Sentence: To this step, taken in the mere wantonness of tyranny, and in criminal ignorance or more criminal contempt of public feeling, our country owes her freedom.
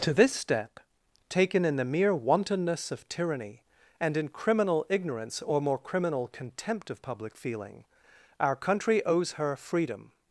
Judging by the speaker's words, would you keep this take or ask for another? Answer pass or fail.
pass